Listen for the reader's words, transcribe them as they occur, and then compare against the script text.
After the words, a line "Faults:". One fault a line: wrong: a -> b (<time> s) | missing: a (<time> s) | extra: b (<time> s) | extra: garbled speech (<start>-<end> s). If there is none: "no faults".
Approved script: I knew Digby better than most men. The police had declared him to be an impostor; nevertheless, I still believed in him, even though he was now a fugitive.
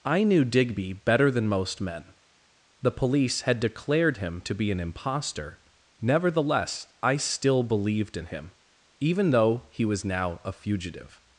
I knew Digby better than most men. The police had declared him to be an impostor; nevertheless, I still believed in him, even though he was now a fugitive.
Faults:
no faults